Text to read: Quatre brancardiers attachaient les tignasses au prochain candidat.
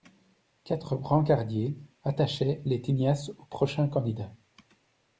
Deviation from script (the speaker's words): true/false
false